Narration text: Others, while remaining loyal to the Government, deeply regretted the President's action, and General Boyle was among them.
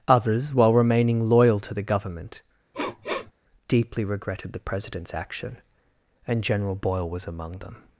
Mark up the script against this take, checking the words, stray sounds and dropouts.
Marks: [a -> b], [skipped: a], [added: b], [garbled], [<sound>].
Others, while remaining loyal to the Government, [sniff] deeply regretted the President's action, and General Boyle was among them.